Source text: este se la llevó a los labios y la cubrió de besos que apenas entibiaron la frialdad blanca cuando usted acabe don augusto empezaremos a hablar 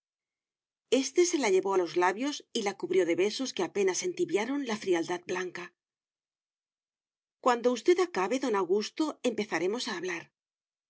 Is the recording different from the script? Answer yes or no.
no